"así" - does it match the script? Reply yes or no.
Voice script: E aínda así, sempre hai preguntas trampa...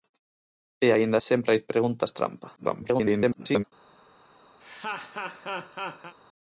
no